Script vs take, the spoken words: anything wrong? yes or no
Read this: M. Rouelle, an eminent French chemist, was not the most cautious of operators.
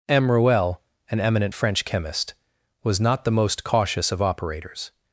no